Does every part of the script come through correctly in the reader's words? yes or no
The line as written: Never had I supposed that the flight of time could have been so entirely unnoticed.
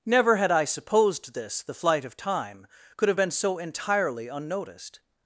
no